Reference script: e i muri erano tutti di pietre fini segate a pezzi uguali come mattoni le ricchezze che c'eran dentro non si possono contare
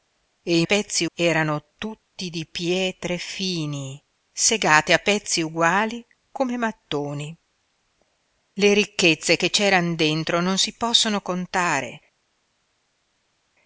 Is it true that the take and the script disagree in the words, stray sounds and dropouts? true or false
true